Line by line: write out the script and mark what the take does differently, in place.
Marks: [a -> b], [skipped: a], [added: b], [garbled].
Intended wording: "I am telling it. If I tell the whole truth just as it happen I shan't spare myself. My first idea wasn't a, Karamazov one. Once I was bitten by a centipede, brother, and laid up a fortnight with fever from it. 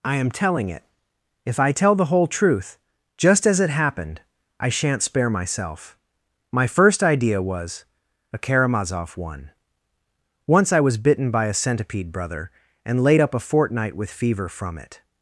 "I am telling it. If I tell the whole truth just as it [happen -> happened] I shan't spare myself. My first idea [wasn't -> was] a, Karamazov one. Once I was bitten by a centipede, brother, and laid up a fortnight with fever from it.